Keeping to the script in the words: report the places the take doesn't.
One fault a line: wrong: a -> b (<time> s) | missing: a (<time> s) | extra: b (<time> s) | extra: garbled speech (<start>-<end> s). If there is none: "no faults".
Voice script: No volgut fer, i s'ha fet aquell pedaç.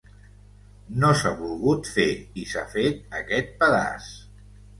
extra: s'ha (1.2 s)
wrong: aquell -> aquest (3.2 s)